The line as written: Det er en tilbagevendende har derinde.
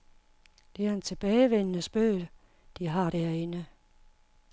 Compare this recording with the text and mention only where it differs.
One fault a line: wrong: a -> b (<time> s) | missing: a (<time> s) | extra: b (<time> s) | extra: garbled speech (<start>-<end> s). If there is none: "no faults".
extra: spøg de (1.8 s)